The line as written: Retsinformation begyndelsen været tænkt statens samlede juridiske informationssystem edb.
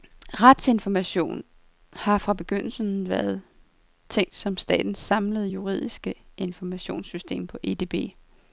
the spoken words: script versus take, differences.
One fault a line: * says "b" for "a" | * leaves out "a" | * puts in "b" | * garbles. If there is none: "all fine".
* puts in "har fra"
* puts in "som"
* puts in "på"